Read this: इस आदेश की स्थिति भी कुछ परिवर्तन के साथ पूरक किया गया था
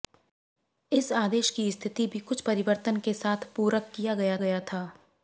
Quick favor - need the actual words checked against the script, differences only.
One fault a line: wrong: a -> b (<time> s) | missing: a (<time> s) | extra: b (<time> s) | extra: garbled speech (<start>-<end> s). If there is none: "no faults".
extra: गया (4.4 s)